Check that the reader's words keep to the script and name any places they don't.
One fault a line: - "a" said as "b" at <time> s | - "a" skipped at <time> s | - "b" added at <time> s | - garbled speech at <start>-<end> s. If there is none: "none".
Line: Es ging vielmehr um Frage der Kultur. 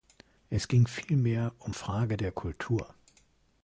none